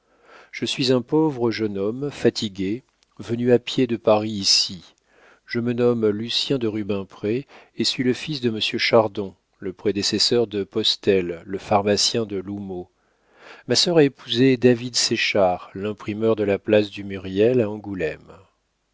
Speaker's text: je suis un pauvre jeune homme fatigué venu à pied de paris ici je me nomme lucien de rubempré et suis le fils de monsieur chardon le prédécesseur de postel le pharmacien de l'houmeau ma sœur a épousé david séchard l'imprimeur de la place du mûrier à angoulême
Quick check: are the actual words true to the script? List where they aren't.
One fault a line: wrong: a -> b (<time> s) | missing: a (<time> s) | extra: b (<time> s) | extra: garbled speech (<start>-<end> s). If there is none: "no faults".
no faults